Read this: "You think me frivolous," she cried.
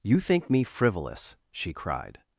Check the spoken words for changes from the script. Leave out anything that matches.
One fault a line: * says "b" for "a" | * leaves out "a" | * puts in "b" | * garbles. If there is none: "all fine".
all fine